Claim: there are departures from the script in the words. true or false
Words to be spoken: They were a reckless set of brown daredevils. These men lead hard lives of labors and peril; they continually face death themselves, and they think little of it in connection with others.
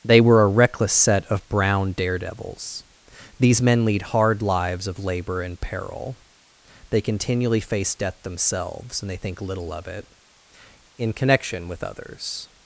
true